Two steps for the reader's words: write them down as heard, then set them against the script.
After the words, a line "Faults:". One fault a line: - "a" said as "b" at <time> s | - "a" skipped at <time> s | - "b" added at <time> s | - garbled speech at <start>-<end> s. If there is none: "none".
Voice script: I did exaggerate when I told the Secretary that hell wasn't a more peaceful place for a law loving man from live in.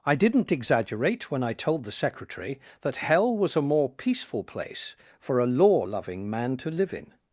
I didn't exaggerate when I told the Secretary that hell was a more peaceful place for a law loving man to live in.
Faults:
- "did" said as "didn't" at 0.1 s
- "wasn't" said as "was" at 3.4 s
- "from" said as "to" at 6.6 s